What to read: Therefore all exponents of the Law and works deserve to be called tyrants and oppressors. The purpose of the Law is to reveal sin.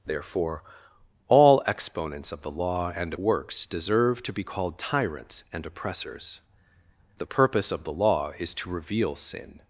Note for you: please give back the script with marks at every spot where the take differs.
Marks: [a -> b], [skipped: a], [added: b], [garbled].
Therefore all exponents of the Law and works deserve to be called tyrants and oppressors. The purpose of the Law is to reveal sin.